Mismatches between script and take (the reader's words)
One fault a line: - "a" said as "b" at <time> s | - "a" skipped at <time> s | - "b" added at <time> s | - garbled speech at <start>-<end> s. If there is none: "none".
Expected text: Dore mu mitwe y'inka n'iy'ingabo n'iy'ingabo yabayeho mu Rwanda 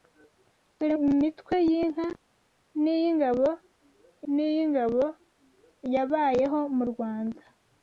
none